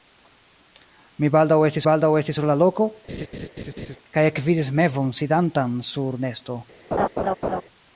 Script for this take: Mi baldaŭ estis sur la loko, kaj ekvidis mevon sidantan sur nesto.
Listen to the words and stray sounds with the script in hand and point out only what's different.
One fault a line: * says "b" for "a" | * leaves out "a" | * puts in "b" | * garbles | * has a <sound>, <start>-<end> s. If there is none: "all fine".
* puts in "baldaŭ estis"
* has a laugh, 3.1-4.0 s
* has a laugh, 6.9-7.6 s